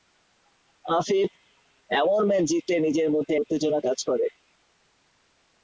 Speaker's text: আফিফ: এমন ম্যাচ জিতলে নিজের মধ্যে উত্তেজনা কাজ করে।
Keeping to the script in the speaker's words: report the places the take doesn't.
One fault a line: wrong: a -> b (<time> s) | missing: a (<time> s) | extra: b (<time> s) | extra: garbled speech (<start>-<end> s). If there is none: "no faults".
no faults